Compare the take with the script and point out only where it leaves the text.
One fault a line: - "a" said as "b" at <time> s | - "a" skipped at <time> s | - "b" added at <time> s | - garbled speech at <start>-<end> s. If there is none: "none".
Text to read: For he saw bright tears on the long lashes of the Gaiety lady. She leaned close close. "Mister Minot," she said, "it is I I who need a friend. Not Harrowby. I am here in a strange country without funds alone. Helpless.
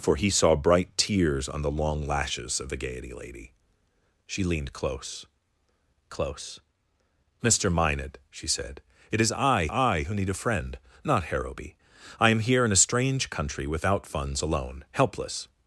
none